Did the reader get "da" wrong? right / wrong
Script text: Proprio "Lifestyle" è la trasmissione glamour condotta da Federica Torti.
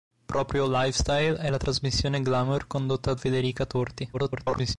wrong